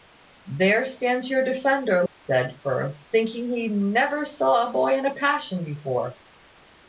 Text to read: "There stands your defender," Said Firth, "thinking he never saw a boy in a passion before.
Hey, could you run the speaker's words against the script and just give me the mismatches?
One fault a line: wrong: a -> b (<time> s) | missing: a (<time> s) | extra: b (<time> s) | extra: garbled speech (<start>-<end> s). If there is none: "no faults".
no faults